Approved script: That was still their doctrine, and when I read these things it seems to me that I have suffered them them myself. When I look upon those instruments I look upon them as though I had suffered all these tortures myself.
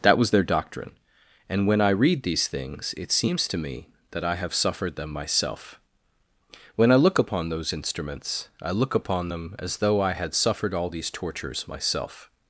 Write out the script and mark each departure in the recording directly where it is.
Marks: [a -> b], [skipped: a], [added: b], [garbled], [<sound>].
That was [skipped: still] their doctrine, and when I read these things it seems to me that I have suffered them [skipped: them] myself. When I look upon those instruments I look upon them as though I had suffered all these tortures myself.